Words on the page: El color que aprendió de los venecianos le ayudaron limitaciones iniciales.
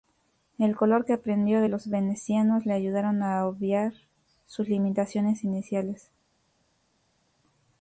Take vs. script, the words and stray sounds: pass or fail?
fail